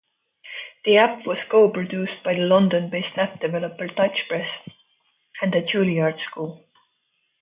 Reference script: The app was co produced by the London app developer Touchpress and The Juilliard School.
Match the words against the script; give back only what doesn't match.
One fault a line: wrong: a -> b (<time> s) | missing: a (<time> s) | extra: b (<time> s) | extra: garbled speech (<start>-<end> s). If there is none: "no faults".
extra: based (2.9 s)